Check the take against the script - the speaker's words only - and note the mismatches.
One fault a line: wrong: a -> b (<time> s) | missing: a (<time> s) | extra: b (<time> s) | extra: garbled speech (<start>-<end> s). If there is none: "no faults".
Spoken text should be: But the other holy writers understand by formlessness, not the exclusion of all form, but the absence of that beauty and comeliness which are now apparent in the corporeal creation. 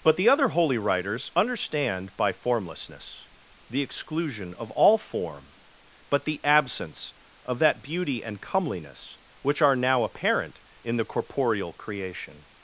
missing: not (3.3 s)